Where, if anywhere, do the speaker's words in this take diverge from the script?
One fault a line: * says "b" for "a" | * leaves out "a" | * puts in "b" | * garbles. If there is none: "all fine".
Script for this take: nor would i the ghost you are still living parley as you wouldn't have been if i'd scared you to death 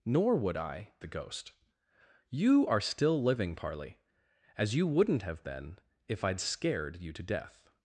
all fine